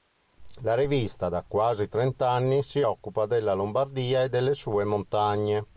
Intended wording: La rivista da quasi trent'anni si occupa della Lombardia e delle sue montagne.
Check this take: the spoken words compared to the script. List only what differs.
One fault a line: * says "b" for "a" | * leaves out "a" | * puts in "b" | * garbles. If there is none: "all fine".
all fine